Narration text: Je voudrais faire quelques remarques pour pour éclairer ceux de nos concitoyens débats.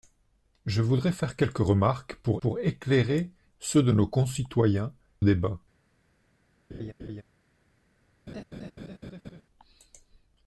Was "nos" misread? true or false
false